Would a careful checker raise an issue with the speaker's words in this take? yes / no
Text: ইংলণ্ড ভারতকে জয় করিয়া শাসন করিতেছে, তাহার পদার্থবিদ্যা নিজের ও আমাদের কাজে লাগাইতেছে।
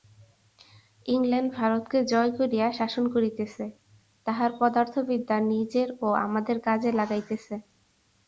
no